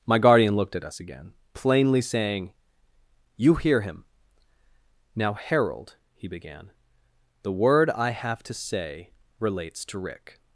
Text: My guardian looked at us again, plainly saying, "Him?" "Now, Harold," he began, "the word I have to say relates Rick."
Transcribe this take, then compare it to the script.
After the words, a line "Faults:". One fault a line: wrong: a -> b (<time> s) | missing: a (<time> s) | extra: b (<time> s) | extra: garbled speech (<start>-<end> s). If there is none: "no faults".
My guardian looked at us again, plainly saying, "You hear him?" "Now, Harold," he began, "the word I have to say relates to Rick."
Faults:
extra: You hear (3.4 s)
extra: to (9.8 s)